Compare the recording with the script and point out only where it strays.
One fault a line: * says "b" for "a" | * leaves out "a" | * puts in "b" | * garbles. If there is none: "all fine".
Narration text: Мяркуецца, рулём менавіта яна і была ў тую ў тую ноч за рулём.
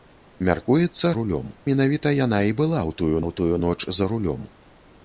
all fine